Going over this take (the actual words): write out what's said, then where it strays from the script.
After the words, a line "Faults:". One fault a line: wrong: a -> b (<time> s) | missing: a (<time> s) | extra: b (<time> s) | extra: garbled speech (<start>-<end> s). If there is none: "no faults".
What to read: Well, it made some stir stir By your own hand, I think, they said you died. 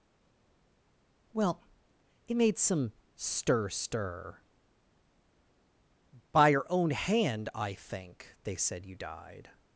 Well, it made some stir stir By your own hand, I think, they said you died.
Faults:
no faults